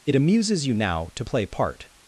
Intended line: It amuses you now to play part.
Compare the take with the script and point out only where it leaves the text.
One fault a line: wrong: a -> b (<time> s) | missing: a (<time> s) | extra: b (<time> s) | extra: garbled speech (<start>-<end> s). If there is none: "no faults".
no faults